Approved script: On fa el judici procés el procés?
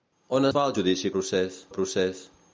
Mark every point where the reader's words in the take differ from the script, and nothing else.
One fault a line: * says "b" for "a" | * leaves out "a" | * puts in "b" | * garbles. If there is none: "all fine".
all fine